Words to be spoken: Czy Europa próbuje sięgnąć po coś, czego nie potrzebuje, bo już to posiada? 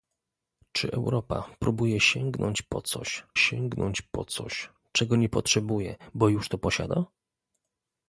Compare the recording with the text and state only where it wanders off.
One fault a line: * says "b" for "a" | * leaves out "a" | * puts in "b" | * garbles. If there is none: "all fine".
* puts in "sięgnąć po coś"